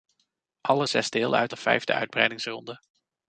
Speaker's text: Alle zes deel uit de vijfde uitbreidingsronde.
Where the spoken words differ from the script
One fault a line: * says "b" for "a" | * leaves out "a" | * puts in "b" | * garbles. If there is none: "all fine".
all fine